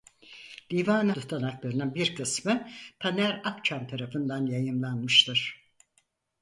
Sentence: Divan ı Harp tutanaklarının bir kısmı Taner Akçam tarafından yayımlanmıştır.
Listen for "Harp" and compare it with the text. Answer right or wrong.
wrong